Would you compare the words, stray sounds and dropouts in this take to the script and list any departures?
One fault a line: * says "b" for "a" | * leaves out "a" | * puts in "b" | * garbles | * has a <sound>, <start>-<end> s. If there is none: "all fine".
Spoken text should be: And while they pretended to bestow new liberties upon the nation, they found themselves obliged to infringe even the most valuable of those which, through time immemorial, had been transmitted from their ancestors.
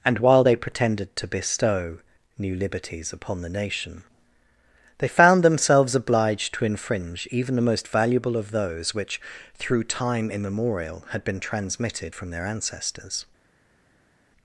all fine